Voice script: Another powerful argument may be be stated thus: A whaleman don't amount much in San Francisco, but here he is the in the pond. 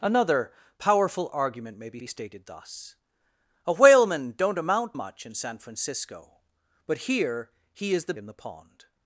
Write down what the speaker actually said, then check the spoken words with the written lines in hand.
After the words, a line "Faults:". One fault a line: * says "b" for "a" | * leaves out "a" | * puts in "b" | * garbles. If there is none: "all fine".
Another powerful argument may be be stated thus: A whaleman don't amount much in San Francisco, but here he is the in the pond.
Faults:
all fine